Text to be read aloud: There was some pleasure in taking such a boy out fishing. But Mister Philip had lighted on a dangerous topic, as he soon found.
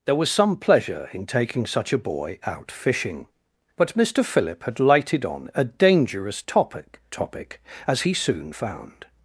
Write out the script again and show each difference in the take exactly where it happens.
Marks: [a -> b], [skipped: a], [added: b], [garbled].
There was some pleasure in taking such a boy out fishing. But Mister Philip had lighted on a dangerous topic, [added: topic] as he soon found.